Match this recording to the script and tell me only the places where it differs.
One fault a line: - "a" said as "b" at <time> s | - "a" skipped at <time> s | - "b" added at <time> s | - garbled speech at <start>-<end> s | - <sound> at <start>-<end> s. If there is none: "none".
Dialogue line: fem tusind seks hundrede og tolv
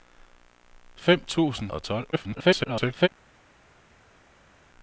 - "seks hundrede" skipped at 1.7 s
- garbled speech at 2.1-3.1 s